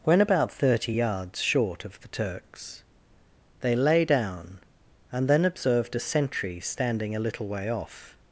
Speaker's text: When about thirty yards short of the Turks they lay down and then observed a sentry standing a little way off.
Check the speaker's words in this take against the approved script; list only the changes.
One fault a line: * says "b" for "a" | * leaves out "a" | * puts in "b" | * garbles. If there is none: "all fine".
all fine